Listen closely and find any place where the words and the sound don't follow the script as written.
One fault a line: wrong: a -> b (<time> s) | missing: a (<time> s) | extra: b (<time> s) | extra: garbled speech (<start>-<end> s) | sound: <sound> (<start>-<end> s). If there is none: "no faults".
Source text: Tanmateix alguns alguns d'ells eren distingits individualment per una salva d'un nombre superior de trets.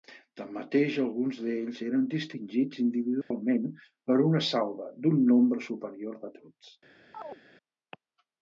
missing: alguns (1.4 s)
sound: dropout (3.2-3.3 s)
sound: chirp (7.1-7.4 s)